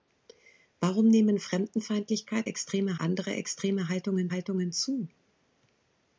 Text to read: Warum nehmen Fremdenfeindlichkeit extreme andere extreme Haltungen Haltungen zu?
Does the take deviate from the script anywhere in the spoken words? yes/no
no